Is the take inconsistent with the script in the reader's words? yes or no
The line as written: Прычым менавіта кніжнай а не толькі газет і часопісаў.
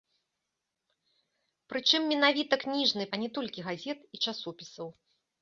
no